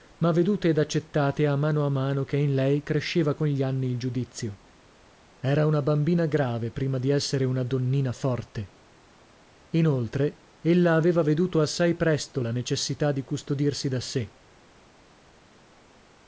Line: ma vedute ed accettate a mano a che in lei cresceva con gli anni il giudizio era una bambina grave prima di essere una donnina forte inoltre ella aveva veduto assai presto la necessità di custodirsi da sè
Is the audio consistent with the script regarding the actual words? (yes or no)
no